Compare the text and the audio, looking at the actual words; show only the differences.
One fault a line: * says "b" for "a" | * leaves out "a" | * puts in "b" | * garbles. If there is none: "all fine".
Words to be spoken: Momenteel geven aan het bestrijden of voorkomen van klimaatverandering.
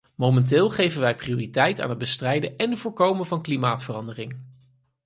* puts in "wij prioriteit"
* says "en" for "of"